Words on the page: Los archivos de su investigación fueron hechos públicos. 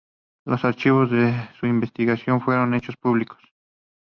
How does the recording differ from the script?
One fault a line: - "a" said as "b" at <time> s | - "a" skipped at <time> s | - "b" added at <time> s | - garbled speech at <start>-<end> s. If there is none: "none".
none